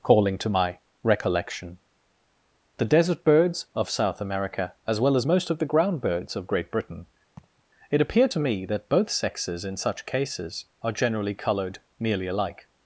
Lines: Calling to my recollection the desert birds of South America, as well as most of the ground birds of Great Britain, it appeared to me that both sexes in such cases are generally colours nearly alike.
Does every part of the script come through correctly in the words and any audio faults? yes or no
no